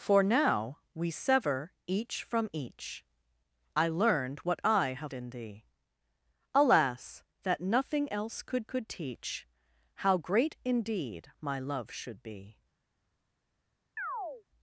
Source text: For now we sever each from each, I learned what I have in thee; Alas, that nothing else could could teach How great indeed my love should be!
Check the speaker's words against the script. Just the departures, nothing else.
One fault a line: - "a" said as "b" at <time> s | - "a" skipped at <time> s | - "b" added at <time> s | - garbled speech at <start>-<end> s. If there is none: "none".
none